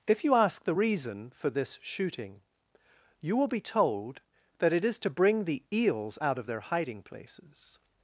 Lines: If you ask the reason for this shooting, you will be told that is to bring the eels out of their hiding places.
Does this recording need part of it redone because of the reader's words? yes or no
yes